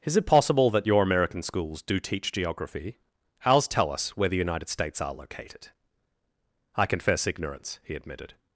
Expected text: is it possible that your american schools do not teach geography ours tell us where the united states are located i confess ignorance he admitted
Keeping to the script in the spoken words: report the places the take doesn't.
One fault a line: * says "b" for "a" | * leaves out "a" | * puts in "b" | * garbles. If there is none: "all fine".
* leaves out "not"